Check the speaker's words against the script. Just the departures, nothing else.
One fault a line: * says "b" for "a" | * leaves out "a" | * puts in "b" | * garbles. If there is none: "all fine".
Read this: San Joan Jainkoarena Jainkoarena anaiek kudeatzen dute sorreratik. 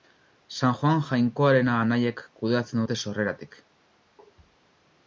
* leaves out "Jainkoarena"